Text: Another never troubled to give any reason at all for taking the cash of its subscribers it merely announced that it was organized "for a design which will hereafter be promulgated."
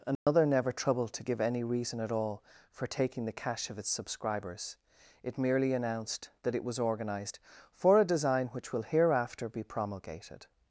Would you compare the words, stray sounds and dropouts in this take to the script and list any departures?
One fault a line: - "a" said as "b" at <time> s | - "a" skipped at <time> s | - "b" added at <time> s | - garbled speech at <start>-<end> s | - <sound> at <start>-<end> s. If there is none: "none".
- dropout at 0.2-0.3 s